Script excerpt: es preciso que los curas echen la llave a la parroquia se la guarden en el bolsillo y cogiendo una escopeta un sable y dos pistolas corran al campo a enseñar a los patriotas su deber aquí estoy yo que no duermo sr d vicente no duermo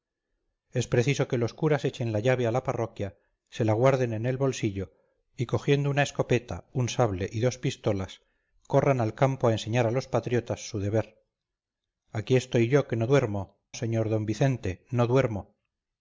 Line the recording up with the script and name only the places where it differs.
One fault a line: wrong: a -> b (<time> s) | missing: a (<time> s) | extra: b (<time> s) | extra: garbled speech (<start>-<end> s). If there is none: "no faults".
no faults